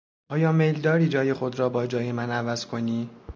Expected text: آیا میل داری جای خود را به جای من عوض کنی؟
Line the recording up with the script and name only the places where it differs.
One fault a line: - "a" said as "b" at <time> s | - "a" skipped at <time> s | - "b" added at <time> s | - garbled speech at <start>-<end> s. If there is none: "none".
- "به" said as "با" at 1.7 s